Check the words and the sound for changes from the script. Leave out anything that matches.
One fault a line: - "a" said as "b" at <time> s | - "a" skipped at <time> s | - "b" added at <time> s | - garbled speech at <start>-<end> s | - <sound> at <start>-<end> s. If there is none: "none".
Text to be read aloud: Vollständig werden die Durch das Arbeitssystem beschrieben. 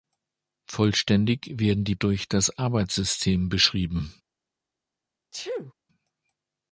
- sneeze at 5.3-5.7 s